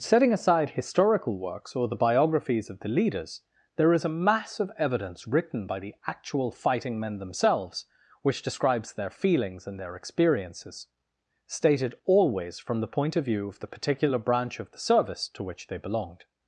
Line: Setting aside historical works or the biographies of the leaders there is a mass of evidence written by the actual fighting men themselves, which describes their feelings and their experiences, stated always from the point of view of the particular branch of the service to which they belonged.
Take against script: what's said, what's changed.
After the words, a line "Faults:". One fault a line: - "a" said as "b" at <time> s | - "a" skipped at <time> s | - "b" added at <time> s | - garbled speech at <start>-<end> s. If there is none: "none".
Setting aside historical works or the biographies of the leaders there is a mass of evidence written by the actual fighting men themselves, which describes their feelings and their experiences, stated always from the point of view of the particular branch of the service to which they belonged.
Faults:
none